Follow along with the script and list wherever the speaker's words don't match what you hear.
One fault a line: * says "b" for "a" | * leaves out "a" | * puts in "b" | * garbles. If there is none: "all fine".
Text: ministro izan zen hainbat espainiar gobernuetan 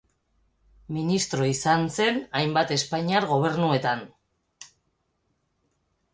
all fine